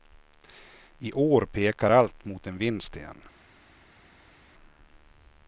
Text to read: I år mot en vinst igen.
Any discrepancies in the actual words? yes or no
yes